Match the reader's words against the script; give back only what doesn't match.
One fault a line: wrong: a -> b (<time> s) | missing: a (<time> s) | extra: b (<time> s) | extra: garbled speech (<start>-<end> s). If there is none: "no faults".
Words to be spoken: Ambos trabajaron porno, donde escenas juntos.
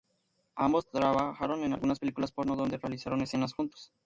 extra: en algunas películas (1.6 s)
extra: realizaron (2.8 s)